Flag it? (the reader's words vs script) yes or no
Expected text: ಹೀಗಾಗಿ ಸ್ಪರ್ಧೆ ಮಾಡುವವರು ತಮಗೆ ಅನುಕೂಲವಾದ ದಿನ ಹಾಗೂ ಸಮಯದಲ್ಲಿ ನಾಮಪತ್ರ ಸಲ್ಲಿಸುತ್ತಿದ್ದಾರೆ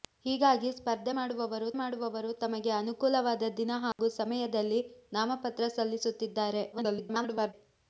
yes